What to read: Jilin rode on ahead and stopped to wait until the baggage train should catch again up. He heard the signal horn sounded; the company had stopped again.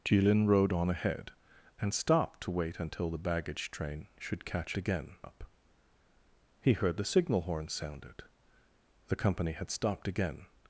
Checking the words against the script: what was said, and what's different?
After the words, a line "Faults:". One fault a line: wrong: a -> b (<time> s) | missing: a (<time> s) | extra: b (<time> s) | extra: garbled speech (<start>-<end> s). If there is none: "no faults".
Jilin rode on ahead and stopped to wait until the baggage train should catch again up. He heard the signal horn sounded; the company had stopped again.
Faults:
no faults